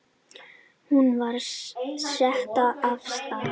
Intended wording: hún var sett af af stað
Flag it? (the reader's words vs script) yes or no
yes